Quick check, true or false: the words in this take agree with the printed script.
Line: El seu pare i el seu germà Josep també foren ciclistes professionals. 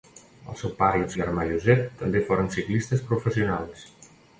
false